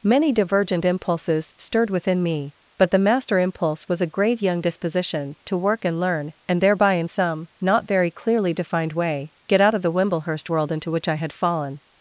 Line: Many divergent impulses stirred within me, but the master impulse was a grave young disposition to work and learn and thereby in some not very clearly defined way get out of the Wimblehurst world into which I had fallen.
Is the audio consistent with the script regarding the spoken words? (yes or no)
yes